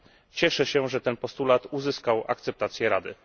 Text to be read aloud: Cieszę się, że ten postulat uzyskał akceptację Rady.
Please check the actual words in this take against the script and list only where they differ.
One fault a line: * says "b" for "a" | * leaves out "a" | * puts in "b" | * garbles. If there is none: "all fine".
all fine